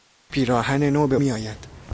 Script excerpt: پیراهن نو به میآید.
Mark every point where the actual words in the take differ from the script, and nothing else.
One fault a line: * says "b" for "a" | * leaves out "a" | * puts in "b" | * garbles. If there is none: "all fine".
all fine